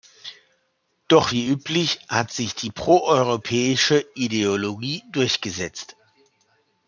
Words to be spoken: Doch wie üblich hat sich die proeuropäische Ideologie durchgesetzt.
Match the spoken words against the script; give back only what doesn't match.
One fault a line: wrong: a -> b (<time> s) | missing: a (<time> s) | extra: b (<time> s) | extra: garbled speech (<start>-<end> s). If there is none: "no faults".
no faults